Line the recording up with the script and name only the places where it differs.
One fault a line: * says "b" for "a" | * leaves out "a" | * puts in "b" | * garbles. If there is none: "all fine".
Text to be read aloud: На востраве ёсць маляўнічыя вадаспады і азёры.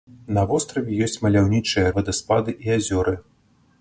all fine